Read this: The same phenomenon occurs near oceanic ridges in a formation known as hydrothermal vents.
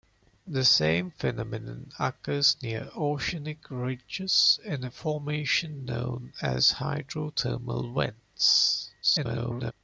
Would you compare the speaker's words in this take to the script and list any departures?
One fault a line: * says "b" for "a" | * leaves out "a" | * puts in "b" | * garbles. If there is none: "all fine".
* garbles